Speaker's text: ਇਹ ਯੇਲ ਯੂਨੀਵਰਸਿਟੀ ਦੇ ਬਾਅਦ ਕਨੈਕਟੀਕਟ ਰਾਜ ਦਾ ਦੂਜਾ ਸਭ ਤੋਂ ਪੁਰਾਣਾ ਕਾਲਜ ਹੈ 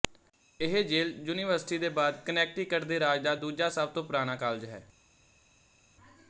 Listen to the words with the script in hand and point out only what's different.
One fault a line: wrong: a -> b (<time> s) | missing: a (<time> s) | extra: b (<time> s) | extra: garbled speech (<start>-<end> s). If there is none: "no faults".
extra: ਦੇ (2.9 s)